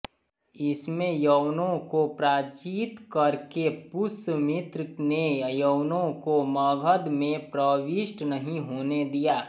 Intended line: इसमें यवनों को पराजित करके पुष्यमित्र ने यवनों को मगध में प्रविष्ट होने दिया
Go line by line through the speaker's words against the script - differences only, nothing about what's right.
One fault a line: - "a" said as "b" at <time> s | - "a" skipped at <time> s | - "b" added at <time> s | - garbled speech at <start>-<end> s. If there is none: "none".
- "नहीं" added at 8.2 s